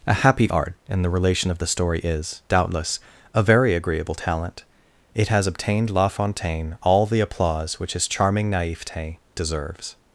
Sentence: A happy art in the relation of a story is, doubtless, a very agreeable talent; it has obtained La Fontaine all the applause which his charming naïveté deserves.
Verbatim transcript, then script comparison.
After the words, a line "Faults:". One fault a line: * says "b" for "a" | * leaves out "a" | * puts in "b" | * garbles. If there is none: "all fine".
A happy art in the relation of the story is, doubtless, a very agreeable talent; it has obtained La Fontaine all the applause which his charming naïveté deserves.
Faults:
* says "the" for "a"